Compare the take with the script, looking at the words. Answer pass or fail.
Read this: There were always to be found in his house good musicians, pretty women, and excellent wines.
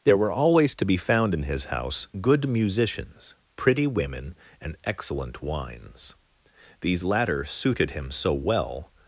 fail